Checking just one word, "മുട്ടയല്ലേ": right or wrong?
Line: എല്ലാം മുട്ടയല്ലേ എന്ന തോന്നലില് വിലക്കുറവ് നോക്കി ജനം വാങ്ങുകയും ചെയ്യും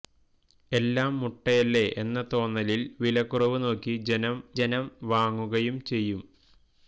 right